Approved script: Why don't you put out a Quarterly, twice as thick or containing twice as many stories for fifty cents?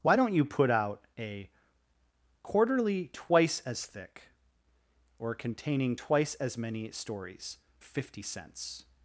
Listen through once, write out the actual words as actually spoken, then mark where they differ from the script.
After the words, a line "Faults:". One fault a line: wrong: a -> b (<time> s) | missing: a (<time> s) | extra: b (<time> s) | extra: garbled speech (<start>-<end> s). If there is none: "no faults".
Why don't you put out a Quarterly, twice as thick or containing twice as many stories fifty cents?
Faults:
missing: for (7.6 s)